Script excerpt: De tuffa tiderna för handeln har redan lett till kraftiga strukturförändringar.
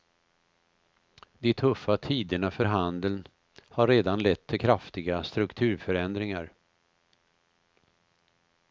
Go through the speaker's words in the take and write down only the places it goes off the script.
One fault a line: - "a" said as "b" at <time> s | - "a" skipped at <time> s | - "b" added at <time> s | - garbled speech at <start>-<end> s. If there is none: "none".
none